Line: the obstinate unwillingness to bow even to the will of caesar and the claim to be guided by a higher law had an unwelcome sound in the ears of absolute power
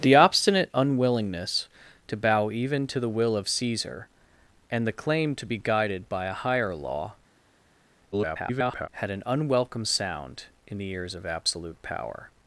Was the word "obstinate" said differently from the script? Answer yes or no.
no